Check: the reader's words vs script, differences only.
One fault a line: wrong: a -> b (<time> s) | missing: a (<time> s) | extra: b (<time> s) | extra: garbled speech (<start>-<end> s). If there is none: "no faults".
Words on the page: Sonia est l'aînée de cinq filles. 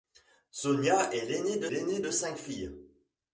extra: l'aînée de (1.7 s)